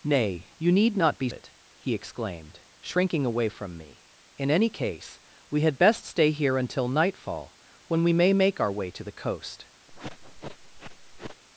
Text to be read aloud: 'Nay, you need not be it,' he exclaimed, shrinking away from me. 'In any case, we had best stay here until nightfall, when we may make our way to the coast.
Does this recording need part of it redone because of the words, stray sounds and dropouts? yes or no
yes